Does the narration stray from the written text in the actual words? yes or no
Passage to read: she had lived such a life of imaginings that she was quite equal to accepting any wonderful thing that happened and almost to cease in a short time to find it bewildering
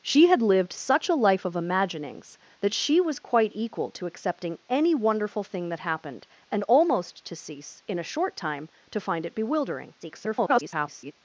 yes